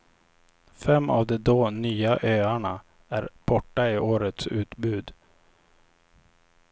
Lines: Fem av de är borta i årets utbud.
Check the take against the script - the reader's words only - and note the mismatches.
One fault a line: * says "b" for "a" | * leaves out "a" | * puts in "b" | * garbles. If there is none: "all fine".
* puts in "då nya öarna"